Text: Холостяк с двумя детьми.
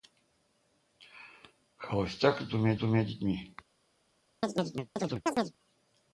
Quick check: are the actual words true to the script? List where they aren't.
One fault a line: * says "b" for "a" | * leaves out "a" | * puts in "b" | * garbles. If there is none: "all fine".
* puts in "двумя"